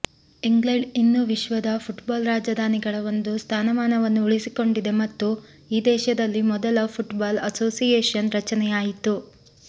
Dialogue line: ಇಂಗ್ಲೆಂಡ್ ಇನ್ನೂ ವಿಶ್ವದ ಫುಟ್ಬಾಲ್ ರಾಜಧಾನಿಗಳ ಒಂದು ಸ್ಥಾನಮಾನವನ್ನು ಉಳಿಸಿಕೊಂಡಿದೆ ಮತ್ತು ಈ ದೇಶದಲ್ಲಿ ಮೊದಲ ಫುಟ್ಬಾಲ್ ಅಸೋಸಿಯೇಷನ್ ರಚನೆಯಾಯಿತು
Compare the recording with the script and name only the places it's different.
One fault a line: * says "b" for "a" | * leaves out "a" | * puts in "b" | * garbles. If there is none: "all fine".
all fine